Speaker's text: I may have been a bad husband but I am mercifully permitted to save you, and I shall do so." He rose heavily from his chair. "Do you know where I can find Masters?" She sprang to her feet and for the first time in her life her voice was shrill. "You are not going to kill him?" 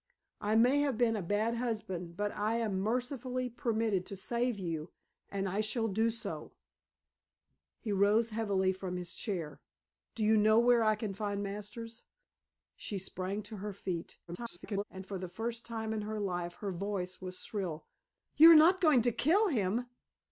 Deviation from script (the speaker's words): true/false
true